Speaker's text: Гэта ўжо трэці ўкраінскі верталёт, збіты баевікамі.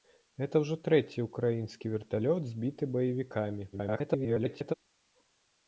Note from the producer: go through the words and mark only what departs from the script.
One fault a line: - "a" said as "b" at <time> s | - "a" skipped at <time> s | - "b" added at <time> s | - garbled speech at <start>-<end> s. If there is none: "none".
- garbled speech at 3.7-4.7 s